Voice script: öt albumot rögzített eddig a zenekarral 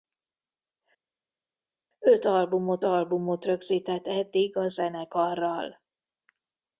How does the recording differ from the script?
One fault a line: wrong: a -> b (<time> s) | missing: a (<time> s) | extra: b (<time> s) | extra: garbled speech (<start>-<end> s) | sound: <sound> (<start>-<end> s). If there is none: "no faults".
extra: albumot (2.8 s)